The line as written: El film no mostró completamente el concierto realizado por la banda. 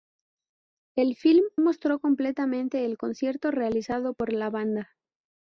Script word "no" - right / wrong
wrong